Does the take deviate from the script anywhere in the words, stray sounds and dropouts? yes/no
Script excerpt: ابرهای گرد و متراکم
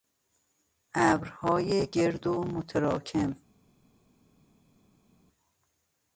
no